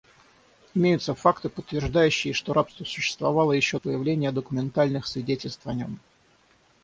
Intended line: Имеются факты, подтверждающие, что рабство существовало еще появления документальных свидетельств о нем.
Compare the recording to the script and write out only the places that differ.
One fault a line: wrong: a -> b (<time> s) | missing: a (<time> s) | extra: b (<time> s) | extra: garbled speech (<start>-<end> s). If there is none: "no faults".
no faults